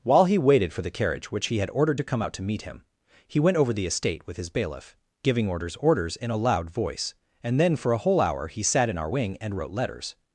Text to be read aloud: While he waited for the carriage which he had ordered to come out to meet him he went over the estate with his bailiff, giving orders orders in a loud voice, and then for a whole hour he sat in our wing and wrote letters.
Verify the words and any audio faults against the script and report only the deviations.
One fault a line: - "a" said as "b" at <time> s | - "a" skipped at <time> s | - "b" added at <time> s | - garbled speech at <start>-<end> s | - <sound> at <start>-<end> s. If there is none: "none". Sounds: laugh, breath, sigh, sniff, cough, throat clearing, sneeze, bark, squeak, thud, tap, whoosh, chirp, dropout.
none